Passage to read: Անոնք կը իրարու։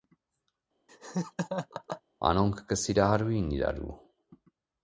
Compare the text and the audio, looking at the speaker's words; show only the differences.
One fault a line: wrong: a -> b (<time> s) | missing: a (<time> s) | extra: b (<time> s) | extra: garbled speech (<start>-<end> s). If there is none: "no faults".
extra: սիրահարուին (2.8 s)